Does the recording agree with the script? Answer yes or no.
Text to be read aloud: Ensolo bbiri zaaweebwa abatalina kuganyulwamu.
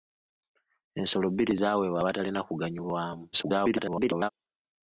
no